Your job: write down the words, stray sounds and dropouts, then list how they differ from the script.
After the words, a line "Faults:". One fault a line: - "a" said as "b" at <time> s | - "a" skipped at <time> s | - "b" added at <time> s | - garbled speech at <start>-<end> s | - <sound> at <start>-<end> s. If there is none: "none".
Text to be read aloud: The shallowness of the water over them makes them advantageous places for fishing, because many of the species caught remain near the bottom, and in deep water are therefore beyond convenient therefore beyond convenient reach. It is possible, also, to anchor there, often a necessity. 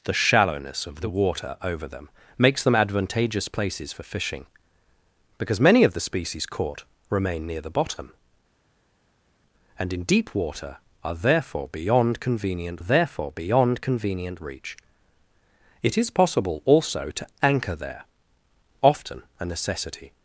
The shallowness of the water over them makes them advantageous places for fishing, because many of the species caught remain near the bottom, and in deep water are therefore beyond convenient therefore beyond convenient reach. It is possible, also, to anchor there, often a necessity.
Faults:
none